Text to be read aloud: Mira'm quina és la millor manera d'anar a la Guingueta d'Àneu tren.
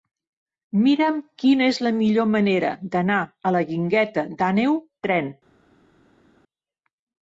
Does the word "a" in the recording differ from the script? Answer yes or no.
no